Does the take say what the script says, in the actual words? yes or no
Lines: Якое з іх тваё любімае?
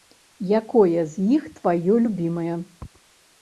yes